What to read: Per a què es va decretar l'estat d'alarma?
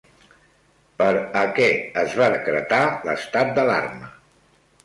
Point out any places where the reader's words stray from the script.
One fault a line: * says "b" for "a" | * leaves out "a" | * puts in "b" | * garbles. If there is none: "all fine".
all fine